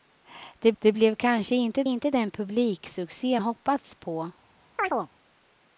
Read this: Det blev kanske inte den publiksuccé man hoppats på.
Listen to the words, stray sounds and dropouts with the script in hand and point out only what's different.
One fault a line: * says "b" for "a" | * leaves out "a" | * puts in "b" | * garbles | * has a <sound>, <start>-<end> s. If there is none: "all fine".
* puts in "det"
* puts in "inte"
* leaves out "man"
* has a chirp, 4.8-5.1 s